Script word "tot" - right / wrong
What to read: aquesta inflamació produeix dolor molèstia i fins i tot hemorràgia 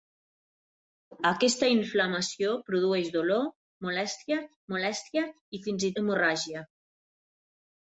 wrong